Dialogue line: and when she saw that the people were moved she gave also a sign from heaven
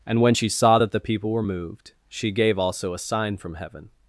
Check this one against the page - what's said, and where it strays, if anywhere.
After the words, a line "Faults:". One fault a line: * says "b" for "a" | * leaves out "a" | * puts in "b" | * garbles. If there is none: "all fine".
and when she saw that the people were moved she gave also a sign from heaven
Faults:
all fine